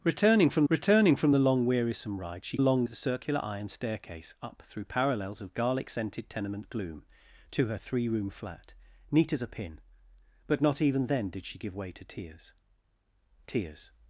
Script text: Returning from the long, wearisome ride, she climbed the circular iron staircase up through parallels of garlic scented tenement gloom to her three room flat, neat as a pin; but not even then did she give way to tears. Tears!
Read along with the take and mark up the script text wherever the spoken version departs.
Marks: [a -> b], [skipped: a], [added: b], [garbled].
Returning from [added: returning from] the long, wearisome ride, she [climbed -> long] the circular iron staircase up through parallels of garlic scented tenement gloom to her three room flat, neat as a pin; but not even then did she give way to tears. Tears!